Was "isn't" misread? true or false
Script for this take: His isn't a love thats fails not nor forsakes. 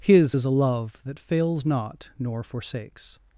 true